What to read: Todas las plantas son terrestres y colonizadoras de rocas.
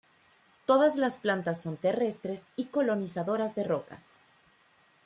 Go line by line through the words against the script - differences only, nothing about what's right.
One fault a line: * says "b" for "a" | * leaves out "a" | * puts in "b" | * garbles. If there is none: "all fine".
all fine